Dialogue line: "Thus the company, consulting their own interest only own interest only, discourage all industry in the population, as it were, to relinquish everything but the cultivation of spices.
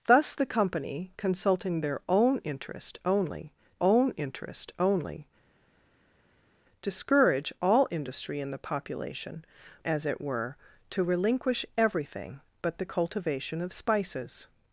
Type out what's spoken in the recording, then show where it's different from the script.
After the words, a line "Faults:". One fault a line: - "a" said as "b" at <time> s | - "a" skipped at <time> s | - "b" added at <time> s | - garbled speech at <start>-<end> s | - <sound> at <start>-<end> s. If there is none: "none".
"Thus the company, consulting their own interest only own interest only, discourage all industry in the population, as it were, to relinquish everything but the cultivation of spices.
Faults:
none